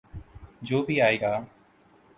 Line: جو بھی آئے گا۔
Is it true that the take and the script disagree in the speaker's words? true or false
false